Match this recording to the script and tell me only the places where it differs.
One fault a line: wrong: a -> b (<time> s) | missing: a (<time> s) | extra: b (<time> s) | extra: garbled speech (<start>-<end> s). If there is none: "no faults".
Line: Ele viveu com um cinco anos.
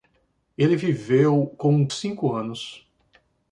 no faults